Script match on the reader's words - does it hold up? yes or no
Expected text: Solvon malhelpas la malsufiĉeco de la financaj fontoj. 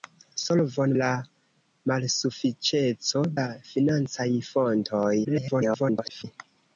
no